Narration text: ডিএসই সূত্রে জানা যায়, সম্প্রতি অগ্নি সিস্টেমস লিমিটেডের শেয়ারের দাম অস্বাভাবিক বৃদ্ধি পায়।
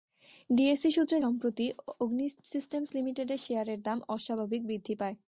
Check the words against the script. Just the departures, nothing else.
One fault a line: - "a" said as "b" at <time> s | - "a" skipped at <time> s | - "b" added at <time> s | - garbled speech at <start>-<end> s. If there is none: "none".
- "জানা যায়" skipped at 1.2 s